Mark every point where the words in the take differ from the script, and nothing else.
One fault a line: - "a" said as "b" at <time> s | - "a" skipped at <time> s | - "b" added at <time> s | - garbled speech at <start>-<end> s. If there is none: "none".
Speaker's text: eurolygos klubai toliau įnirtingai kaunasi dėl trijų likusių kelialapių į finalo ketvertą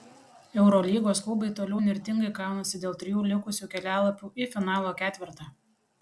none